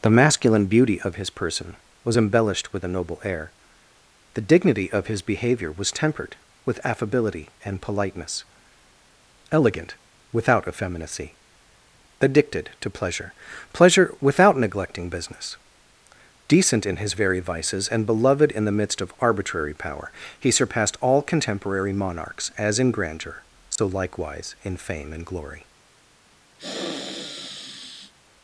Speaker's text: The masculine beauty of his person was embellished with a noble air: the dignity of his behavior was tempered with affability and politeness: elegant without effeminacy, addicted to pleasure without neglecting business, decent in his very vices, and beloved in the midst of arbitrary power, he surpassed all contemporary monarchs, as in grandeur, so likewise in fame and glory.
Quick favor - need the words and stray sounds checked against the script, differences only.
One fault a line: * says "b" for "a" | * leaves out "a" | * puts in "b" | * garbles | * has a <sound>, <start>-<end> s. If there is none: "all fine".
* puts in "pleasure"
* has a dropout, 23.8-23.8 s
* has a sniff, 26.6-28.1 s